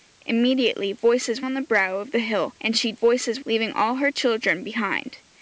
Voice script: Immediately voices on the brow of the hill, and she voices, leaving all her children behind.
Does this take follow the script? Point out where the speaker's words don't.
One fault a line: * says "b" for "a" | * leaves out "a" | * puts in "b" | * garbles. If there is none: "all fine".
all fine